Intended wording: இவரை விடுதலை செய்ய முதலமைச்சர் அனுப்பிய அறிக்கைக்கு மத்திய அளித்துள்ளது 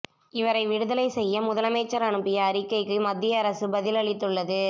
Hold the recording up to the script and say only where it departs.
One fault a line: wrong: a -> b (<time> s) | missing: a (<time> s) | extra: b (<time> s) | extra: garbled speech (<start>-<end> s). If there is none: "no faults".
extra: அரசு பதில் (3.4 s)